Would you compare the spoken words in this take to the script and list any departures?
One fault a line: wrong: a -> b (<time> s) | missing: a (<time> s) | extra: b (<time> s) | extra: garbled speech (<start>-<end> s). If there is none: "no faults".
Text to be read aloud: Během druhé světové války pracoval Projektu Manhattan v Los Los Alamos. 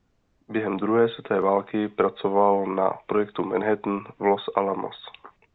extra: na (2.6 s)
missing: Los (4.5 s)